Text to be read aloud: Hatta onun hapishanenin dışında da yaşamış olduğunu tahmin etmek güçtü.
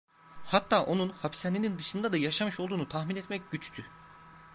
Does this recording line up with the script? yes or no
yes